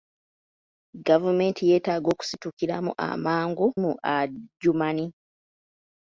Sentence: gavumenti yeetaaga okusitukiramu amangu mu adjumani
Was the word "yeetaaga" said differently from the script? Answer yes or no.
no